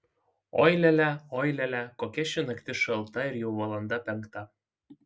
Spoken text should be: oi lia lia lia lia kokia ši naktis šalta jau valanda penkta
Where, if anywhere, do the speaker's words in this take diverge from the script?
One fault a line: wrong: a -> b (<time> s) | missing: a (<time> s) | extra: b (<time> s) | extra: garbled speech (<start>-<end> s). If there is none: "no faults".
extra: oi (1.4 s)
extra: ir (3.3 s)